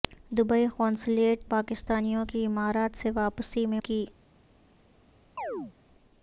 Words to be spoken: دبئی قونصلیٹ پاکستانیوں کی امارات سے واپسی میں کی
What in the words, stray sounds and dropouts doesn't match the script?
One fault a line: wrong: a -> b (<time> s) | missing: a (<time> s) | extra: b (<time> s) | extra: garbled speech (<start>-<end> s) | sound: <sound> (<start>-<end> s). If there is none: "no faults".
sound: chirp (5.4-5.7 s)